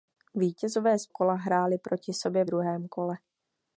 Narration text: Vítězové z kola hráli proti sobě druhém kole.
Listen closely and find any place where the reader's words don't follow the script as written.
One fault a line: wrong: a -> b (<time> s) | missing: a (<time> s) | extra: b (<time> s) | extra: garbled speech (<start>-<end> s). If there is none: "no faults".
no faults